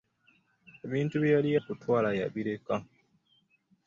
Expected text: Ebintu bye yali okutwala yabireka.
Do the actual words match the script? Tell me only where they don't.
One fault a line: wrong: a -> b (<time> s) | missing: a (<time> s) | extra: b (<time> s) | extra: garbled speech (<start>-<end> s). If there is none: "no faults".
no faults